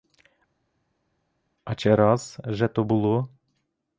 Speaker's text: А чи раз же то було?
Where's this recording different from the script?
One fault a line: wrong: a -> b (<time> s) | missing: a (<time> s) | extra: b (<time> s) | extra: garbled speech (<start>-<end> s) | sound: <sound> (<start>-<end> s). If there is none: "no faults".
no faults